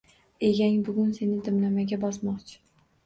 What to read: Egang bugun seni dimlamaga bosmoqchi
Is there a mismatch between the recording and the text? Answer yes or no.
no